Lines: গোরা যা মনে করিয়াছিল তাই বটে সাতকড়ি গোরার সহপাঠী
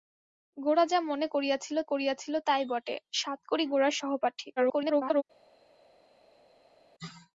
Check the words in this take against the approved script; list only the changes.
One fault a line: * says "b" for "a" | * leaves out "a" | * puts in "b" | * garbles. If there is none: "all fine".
* puts in "করিয়াছিল"
* garbles